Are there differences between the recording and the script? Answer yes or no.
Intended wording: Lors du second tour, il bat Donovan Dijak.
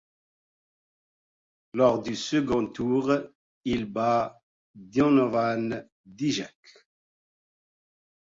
no